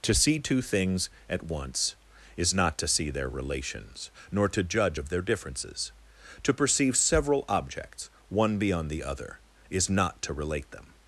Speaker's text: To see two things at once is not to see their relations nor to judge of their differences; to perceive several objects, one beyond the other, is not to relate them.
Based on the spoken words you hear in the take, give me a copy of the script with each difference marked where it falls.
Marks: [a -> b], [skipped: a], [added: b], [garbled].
To see two things at once is not to see their relations nor to judge of their differences; to perceive several objects, one beyond the other, is not to relate them.